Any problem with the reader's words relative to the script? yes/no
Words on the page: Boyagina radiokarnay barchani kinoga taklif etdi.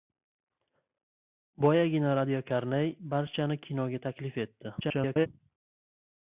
yes